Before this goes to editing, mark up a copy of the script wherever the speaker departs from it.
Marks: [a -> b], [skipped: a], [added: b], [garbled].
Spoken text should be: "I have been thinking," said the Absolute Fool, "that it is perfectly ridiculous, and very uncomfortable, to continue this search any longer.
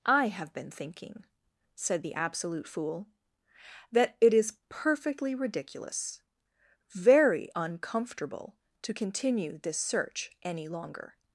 "I have been thinking," said the Absolute Fool, "that it is perfectly ridiculous, [skipped: and] very uncomfortable, to continue this search any longer.